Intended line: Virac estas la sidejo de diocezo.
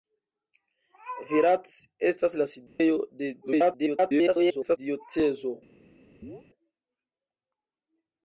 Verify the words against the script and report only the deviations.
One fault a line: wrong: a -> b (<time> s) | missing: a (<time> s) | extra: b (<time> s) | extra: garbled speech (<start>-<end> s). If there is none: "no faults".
extra: garbled speech (3.4-4.8 s)